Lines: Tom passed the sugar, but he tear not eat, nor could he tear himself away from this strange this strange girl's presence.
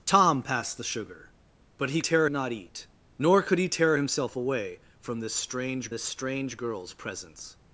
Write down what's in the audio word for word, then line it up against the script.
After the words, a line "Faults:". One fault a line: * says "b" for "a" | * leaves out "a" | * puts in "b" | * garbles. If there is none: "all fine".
Tom passed the sugar, but he tear not eat, nor could he tear himself away from this strange this strange girl's presence.
Faults:
all fine